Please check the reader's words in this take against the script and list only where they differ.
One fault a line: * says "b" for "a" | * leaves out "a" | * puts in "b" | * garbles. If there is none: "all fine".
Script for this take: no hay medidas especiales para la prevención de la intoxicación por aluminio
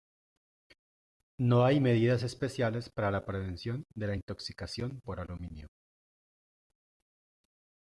all fine